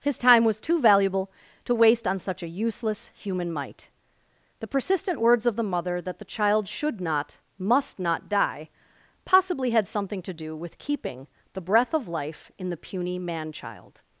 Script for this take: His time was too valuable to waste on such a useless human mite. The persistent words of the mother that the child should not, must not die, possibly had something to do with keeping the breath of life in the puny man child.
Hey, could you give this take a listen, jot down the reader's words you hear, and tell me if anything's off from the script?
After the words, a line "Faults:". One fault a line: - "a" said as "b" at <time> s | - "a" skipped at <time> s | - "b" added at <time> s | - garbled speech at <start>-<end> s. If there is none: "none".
His time was too valuable to waste on such a useless human mite. The persistent words of the mother that the child should not, must not die, possibly had something to do with keeping the breath of life in the puny man child.
Faults:
none